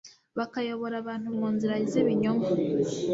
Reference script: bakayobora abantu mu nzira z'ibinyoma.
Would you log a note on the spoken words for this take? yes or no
no